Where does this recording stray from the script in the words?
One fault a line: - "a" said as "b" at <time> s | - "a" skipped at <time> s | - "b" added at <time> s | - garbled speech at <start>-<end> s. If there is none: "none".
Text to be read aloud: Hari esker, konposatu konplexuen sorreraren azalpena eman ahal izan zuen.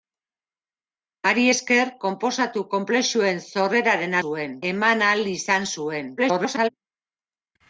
- "azalpena" said as "zuen" at 4.2 s
- garbled speech at 6.2-6.7 s